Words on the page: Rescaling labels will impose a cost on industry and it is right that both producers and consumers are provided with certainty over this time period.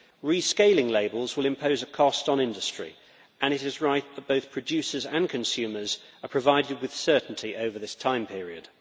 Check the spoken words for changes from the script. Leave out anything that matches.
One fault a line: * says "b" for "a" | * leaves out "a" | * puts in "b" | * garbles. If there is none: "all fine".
all fine